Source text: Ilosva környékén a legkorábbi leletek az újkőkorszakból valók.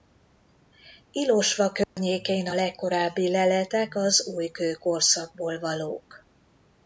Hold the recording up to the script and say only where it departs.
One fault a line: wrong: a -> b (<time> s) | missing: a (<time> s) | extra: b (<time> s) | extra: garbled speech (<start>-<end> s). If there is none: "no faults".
no faults